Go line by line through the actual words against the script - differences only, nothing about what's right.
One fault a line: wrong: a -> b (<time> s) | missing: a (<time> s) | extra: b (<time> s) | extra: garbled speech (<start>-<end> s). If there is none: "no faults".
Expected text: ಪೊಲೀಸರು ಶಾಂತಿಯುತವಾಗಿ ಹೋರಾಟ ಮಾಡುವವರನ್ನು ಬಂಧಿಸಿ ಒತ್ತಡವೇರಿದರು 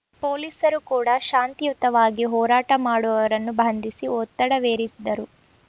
extra: ಕೂಡ (0.8 s)